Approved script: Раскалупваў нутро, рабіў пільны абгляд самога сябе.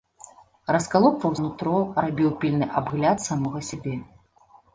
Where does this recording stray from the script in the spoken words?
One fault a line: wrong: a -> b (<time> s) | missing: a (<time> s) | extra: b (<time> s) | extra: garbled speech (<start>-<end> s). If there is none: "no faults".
no faults